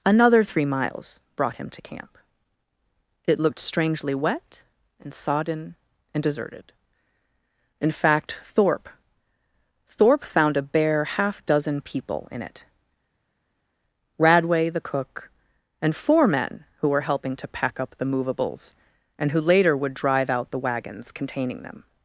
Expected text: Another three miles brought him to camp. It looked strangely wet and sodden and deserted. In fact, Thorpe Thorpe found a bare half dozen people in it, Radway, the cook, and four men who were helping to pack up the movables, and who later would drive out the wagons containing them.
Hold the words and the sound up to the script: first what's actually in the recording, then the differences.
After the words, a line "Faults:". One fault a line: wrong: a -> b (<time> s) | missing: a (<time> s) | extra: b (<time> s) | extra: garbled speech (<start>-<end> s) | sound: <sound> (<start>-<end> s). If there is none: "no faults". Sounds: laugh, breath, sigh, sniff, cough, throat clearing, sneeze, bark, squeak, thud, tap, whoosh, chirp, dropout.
Another three miles brought him to camp. It looked strangely wet and sodden and deserted. In fact, Thorpe Thorpe found a bare half dozen people in it, Radway, the cook, and four men who were helping to pack up the movables, and who later would drive out the wagons containing them.
Faults:
no faults